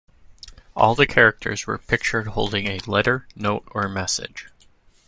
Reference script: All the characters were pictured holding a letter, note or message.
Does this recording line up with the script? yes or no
yes